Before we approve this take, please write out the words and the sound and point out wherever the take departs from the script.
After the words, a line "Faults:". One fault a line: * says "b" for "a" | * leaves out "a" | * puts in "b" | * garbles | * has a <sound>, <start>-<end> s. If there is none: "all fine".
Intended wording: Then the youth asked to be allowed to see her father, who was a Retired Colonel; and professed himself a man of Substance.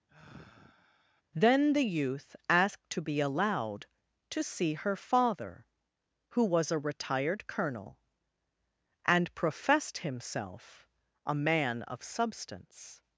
Then the youth asked to be allowed to see her father, who was a Retired Colonel; and professed himself a man of Substance.
Faults:
* has a sigh, 0.1-1.2 s